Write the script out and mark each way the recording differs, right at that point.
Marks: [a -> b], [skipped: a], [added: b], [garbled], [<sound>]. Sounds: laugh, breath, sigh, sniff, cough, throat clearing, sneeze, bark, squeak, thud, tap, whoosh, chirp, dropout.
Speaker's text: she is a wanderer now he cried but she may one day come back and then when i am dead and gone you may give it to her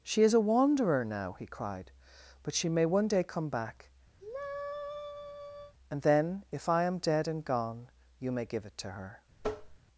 she is a wanderer now he cried but she may one day come back [sigh] and then [when -> if] i am dead and gone you may give it to her [tap]